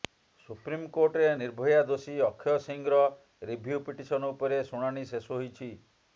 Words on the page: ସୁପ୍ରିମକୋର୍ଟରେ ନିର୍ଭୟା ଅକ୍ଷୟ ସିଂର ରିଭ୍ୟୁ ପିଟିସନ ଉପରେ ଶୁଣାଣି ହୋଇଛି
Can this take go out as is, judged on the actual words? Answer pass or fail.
fail